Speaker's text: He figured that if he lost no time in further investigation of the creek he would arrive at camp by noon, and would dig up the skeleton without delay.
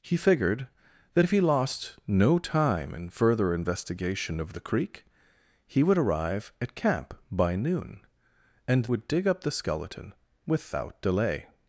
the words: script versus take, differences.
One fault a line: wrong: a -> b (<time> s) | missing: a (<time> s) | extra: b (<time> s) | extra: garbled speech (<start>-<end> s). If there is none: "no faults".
no faults